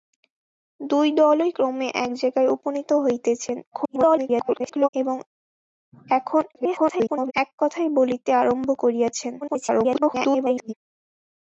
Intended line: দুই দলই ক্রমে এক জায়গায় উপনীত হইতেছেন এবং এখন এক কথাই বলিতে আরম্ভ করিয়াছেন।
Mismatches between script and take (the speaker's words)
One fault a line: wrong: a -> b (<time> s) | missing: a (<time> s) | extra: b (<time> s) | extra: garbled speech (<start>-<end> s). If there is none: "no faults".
extra: garbled speech (3.7-4.9 s)
extra: garbled speech (6.5-7.3 s)
extra: garbled speech (9.4-10.7 s)